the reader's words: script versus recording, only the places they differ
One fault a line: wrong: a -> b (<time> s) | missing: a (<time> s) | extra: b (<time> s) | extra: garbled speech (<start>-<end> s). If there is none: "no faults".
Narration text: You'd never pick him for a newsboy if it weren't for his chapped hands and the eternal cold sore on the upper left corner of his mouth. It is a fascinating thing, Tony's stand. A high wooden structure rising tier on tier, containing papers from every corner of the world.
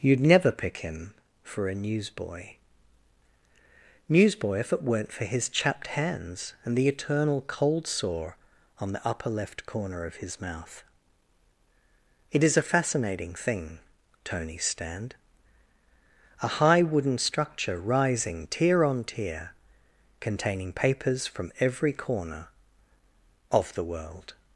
extra: newsboy (4.1 s)